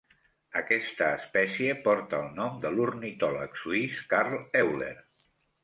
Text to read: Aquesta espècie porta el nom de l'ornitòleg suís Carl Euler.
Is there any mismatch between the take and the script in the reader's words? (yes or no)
no